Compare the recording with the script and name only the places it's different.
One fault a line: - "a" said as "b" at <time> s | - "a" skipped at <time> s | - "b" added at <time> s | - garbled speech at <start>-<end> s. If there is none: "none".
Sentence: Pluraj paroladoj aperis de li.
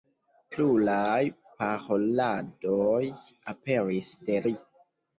none